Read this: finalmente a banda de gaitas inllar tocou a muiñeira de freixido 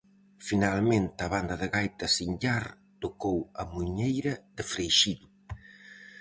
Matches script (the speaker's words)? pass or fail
pass